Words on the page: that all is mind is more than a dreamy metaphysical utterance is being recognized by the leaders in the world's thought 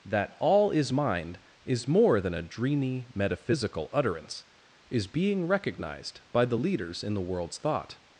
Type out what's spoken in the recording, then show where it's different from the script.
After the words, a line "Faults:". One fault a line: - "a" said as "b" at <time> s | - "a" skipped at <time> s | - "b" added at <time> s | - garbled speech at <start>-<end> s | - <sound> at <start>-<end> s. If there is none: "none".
that all is mind is more than a dreamy metaphysical utterance is being recognized by the leaders in the world's thought
Faults:
none